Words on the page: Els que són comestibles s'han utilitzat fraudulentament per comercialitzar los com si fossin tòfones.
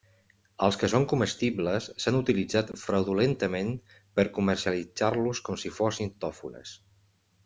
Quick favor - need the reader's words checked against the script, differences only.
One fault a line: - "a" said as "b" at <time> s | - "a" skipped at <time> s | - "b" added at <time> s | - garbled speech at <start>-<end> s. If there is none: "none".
none